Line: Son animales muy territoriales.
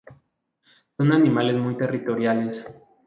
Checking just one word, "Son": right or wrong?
right